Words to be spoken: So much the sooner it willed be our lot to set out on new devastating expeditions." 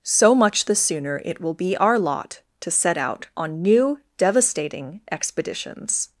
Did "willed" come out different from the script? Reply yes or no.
yes